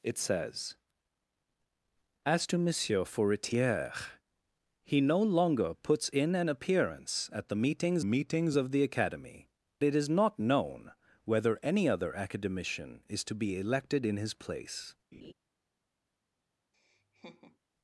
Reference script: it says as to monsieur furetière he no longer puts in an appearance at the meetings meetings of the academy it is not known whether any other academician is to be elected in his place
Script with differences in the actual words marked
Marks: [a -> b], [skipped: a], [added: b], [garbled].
it says as to monsieur furetière he no longer puts in an appearance at the meetings meetings of the academy it is not known whether any other academician is to be elected in his place